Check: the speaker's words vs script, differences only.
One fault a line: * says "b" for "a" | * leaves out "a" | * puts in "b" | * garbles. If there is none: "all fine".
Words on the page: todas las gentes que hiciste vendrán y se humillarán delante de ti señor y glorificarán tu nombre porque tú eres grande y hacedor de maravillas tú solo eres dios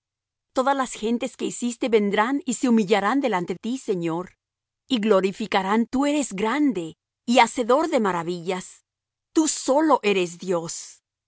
* leaves out "de"
* leaves out "tu nombre porque"